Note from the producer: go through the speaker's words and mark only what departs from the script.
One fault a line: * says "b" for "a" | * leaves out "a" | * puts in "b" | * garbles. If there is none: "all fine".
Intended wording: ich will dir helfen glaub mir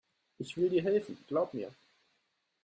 all fine